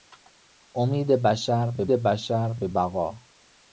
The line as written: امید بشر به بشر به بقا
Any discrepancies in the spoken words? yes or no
no